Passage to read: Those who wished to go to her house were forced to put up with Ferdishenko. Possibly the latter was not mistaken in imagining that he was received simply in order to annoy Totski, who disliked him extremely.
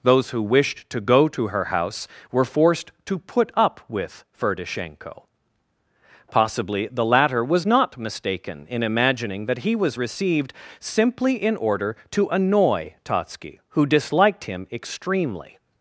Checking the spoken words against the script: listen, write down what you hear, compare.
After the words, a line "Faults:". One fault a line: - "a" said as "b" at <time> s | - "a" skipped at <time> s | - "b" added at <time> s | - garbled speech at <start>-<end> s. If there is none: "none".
Those who wished to go to her house were forced to put up with Ferdishenko. Possibly the latter was not mistaken in imagining that he was received simply in order to annoy Totski, who disliked him extremely.
Faults:
none